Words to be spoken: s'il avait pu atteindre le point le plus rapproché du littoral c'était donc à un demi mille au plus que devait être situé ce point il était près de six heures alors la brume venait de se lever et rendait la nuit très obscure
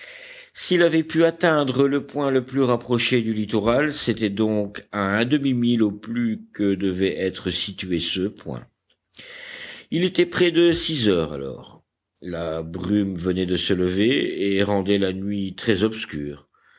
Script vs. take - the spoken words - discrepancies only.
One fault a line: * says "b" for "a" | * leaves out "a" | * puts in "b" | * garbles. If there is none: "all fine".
all fine